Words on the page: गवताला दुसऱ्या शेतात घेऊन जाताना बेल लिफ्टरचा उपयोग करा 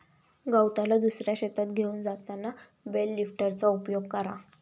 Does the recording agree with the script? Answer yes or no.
yes